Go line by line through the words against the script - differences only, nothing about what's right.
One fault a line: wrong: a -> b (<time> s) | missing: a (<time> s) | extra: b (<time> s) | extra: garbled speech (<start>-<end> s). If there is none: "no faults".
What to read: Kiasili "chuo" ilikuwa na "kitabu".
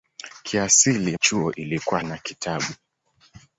no faults